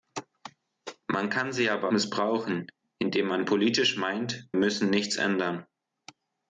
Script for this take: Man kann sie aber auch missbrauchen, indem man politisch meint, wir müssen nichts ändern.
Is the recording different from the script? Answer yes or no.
yes